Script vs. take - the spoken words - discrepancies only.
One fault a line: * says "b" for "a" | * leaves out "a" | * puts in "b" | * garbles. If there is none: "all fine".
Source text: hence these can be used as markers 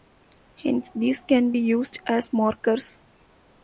all fine